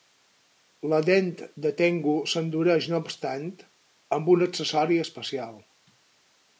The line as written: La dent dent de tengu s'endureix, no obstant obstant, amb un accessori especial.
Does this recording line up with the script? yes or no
no